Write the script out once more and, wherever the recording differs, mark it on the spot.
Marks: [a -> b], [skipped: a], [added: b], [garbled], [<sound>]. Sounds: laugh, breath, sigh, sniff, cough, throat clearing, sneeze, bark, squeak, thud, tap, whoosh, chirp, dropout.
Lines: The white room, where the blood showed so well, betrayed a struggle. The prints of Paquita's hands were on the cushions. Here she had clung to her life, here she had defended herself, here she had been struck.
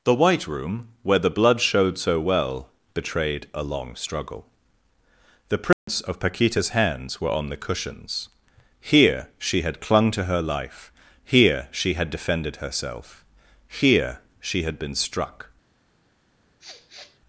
The white room, where the blood showed so well, betrayed a [added: long] struggle. The prints [dropout] of Paquita's hands were on the cushions. Here she had clung to her life, here she had defended herself, here she had been struck. [sniff]